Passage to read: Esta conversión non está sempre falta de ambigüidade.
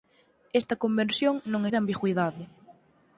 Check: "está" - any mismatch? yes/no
yes